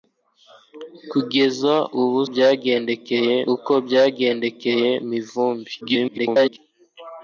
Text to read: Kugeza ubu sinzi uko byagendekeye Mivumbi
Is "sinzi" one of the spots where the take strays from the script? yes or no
yes